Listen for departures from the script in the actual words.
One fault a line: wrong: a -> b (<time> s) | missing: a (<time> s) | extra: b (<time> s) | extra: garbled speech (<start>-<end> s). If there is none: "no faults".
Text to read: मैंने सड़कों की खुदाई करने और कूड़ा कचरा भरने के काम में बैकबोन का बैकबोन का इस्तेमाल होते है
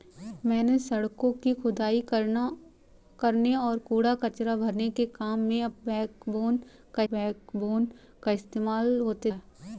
no faults